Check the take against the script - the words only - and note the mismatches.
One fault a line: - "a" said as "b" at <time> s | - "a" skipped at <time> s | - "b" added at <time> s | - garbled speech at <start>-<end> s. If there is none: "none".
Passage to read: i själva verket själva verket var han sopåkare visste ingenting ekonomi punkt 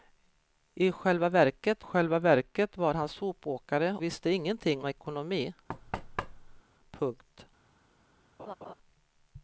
none